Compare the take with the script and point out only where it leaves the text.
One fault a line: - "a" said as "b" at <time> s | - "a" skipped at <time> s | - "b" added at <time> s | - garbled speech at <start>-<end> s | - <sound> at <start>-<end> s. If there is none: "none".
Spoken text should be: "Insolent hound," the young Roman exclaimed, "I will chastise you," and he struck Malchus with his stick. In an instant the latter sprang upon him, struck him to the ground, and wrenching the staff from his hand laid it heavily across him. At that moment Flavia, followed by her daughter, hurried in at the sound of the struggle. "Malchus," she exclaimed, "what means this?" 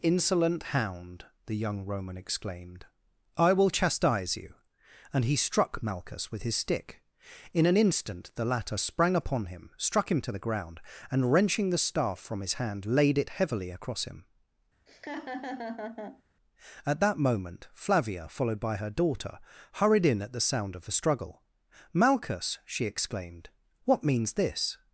- laugh at 14.9-16.2 s